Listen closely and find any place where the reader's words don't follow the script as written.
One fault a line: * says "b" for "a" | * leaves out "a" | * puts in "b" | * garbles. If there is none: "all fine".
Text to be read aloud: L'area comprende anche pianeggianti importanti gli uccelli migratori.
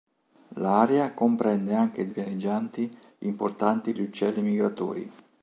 all fine